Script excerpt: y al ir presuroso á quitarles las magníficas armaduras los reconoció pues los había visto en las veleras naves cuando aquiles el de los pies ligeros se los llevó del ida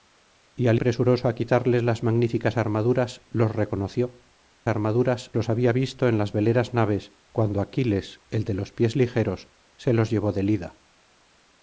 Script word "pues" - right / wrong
wrong